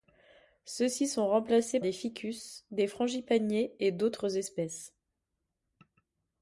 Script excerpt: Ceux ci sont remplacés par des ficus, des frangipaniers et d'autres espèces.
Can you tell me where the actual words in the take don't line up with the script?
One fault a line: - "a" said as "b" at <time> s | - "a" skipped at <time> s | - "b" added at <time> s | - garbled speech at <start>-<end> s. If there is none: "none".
- "par" skipped at 1.8 s